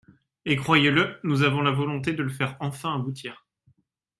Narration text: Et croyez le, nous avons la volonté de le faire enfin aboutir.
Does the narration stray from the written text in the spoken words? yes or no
no